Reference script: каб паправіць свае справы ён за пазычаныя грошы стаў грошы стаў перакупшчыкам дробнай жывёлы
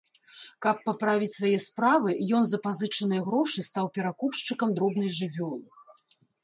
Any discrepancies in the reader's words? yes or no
yes